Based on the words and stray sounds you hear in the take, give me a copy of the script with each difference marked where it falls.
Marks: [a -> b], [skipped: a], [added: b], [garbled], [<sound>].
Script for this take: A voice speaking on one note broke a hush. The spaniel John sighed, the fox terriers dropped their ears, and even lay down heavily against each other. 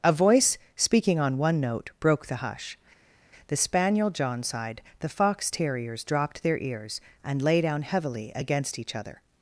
A voice speaking on one note broke [a -> the] hush. The spaniel John sighed, the fox terriers dropped their ears, and [skipped: even] lay down heavily against each other.